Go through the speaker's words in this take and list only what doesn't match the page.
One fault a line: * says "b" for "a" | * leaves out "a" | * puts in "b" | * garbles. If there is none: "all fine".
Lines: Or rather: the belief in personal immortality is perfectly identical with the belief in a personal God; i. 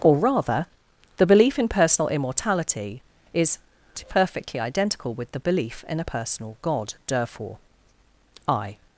* puts in "therefore"